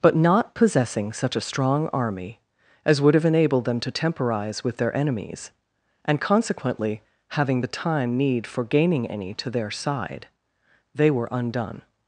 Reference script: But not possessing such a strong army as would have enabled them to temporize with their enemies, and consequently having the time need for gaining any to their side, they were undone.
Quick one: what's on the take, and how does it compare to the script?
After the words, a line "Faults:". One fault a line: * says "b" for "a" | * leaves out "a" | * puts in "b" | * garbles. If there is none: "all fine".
But not possessing such a strong army as would have enabled them to temporize with their enemies, and consequently having the time need for gaining any to their side, they were undone.
Faults:
all fine